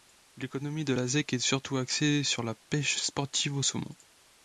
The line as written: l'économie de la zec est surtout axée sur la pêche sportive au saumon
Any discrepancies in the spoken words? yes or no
no